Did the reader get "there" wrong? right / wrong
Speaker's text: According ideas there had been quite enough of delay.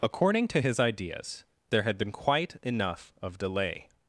right